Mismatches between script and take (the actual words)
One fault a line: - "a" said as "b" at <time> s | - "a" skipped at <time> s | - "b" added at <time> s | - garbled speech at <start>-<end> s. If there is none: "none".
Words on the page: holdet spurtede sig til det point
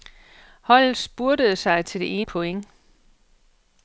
none